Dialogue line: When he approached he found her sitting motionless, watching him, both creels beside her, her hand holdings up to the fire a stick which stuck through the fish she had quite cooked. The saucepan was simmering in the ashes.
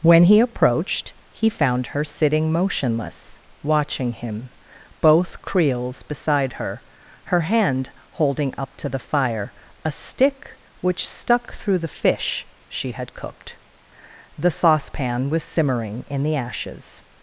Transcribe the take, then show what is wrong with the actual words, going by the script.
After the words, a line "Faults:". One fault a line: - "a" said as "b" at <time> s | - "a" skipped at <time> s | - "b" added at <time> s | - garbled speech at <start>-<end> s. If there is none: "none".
When he approached he found her sitting motionless, watching him, both creels beside her, her hand holding up to the fire a stick which stuck through the fish she had cooked. The saucepan was simmering in the ashes.
Faults:
- "holdings" said as "holding" at 8.1 s
- "quite" skipped at 13.1 s